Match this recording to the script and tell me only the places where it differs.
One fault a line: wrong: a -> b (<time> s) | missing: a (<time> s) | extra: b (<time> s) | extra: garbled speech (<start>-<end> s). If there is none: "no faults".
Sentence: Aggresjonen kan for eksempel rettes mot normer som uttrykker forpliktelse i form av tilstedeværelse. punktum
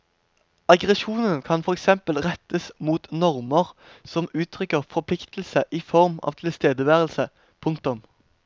no faults